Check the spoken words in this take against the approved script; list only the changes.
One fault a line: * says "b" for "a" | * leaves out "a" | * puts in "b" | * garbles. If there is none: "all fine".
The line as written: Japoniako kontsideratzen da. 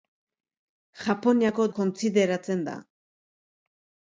all fine